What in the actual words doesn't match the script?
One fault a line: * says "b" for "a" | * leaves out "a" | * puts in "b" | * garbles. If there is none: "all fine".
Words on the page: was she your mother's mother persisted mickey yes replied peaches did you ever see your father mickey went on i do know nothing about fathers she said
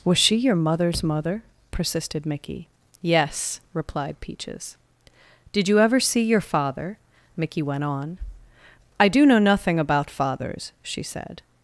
all fine